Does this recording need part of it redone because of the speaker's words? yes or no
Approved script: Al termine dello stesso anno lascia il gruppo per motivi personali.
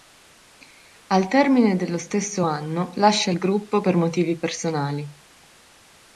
no